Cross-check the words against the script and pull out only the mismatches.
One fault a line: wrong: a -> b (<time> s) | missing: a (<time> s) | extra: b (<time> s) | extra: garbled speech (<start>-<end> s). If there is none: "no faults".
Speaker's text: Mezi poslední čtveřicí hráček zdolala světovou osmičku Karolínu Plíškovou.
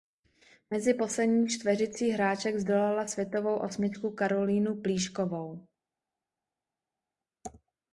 no faults